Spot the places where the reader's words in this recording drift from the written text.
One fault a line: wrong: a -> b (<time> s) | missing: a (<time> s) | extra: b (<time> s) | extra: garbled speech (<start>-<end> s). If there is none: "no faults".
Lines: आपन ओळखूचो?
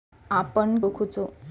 no faults